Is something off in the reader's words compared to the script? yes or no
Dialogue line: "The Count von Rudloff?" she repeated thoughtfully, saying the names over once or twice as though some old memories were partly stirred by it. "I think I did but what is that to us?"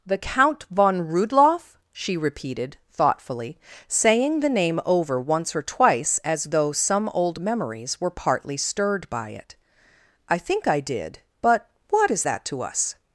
yes